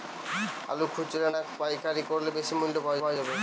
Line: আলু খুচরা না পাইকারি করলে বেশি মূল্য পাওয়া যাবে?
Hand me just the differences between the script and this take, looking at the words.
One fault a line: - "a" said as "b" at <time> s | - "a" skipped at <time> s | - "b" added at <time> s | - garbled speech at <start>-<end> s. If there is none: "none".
- "পাওয়া" added at 3.0 s